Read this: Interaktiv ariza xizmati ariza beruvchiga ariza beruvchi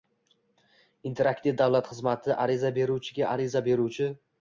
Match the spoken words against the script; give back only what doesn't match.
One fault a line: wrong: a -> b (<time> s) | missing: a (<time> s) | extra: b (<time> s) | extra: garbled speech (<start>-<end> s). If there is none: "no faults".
wrong: ariza -> davlat (1.6 s)